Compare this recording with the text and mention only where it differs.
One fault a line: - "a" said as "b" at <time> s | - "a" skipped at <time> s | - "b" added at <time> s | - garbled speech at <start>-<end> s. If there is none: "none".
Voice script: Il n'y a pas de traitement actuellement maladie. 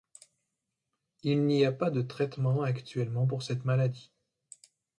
- "pour cette" added at 3.3 s